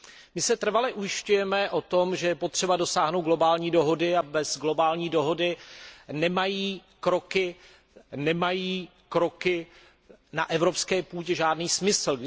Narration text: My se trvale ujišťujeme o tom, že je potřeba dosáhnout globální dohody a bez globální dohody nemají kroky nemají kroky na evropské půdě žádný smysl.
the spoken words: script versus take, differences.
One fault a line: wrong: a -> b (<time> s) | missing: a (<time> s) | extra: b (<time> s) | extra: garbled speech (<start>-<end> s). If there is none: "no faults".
no faults